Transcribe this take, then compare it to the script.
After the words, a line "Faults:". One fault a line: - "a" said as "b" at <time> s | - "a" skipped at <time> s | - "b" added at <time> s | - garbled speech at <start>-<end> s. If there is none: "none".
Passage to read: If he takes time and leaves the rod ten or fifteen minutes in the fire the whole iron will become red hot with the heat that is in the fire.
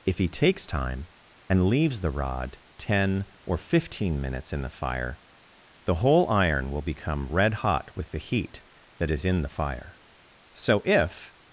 If he takes time and leaves the rod ten or fifteen minutes in the fire the whole iron will become red hot with the heat that is in the fire. So if
Faults:
- "So if" added at 10.5 s